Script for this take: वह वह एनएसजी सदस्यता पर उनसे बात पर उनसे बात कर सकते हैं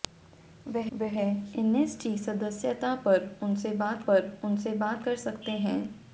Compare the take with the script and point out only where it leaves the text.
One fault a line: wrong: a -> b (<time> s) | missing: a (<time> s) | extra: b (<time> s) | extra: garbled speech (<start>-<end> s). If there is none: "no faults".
no faults